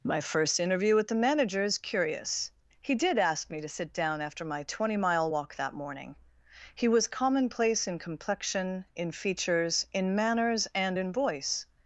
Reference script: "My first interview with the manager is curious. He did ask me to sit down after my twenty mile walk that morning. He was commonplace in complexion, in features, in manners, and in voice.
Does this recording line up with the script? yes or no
yes